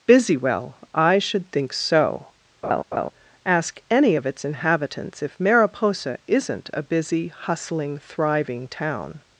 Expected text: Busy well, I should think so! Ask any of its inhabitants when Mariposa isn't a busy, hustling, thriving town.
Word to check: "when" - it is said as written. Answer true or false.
false